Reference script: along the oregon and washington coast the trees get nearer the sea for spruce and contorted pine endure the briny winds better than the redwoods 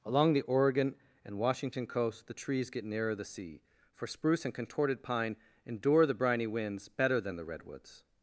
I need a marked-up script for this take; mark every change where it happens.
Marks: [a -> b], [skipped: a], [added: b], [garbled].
along the oregon and washington coast the trees get nearer the sea for spruce and contorted pine endure the briny winds better than the redwoods